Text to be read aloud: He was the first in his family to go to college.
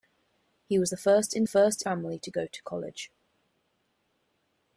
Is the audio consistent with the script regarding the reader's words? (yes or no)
no